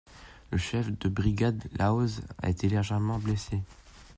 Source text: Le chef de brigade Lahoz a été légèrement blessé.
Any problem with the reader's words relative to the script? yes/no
no